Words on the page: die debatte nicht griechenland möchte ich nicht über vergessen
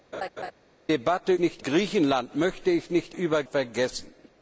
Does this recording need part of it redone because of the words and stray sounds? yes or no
yes